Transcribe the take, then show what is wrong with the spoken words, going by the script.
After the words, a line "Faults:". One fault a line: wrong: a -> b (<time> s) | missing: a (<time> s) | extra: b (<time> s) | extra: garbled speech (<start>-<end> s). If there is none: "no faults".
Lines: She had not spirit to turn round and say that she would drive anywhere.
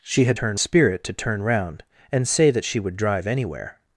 She had turn spirit to turn round and say that she would drive anywhere.
Faults:
wrong: not -> turn (0.3 s)